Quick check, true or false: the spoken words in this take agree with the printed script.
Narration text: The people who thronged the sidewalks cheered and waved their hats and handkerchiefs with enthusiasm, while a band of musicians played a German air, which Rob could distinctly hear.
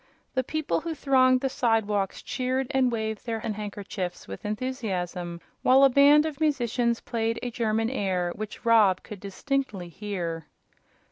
false